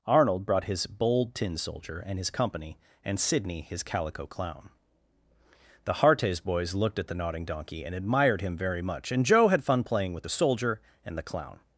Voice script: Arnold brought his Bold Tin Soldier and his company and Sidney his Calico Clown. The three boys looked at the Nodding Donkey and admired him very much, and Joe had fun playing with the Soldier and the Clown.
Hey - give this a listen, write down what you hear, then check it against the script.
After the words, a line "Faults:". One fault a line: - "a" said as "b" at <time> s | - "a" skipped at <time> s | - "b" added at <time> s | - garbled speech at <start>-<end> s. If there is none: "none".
Arnold brought his Bold Tin Soldier and his company and Sidney his Calico Clown. The hartes boys looked at the Nodding Donkey and admired him very much, and Joe had fun playing with the Soldier and the Clown.
Faults:
- "three" said as "hartes" at 5.9 s